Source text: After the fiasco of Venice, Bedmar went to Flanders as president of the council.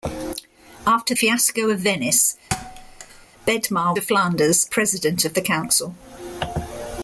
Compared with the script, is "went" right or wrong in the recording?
wrong